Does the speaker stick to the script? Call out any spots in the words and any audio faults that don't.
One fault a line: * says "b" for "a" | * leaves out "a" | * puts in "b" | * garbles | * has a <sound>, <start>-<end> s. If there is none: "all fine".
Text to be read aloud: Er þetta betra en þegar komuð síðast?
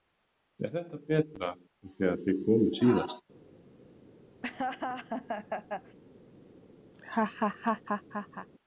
* puts in "þið"
* has a laugh, 4.4-6.0 s
* has a laugh, 6.9-8.5 s